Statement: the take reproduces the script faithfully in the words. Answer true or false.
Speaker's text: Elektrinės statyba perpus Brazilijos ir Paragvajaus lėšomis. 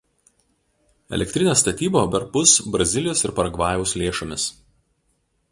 true